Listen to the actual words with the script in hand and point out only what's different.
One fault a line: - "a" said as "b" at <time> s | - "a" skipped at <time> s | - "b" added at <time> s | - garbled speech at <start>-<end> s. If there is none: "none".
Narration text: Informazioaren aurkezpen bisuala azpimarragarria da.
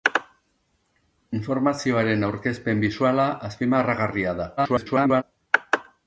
- garbled speech at 4.6-5.2 s